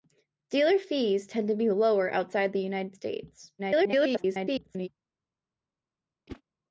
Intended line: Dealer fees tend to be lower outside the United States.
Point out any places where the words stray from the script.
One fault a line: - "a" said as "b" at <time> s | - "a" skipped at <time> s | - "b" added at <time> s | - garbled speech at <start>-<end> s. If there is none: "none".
- garbled speech at 3.6-4.9 s